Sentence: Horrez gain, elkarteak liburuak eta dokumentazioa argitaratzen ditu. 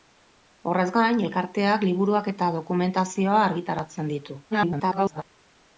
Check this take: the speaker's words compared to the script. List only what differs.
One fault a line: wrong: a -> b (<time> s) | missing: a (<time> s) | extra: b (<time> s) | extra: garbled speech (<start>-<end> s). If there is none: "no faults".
extra: garbled speech (4.5-5.2 s)